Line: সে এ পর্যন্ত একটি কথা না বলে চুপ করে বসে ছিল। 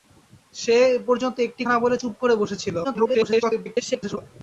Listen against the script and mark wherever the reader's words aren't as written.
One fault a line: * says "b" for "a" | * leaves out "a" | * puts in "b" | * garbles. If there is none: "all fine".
* leaves out "কথা"
* garbles